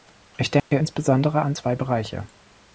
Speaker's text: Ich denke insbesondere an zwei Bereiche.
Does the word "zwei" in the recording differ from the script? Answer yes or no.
no